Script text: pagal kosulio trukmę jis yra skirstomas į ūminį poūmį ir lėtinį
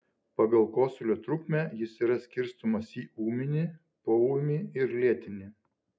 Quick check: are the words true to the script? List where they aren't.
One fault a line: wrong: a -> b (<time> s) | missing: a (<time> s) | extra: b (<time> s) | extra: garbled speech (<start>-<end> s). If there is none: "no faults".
no faults